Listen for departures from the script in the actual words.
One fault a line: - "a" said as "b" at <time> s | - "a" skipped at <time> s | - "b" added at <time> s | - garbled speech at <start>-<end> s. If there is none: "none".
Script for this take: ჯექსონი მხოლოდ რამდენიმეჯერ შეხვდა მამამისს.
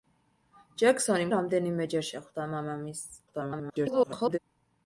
- "მხოლოდ" skipped at 1.3 s
- garbled speech at 3.3-4.4 s